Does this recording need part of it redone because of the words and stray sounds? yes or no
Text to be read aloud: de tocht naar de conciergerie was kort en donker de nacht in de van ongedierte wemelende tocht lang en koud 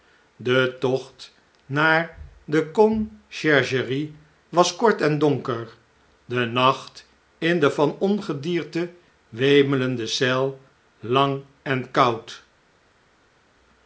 yes